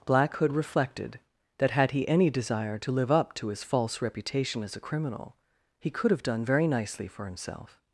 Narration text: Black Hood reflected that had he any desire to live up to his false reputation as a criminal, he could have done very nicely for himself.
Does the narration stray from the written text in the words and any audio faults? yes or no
no